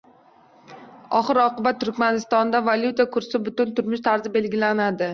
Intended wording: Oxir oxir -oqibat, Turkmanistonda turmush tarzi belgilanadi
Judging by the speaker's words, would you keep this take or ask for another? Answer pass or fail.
fail